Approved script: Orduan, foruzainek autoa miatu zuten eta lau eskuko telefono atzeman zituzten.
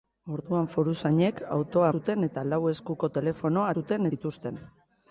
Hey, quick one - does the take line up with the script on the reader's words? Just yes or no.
no